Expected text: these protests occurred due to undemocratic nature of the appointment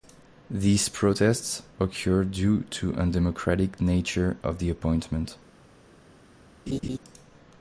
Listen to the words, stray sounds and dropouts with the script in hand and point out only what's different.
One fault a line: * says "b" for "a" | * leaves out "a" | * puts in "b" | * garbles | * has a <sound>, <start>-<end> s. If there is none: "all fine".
* has a laugh, 6.7-7.0 s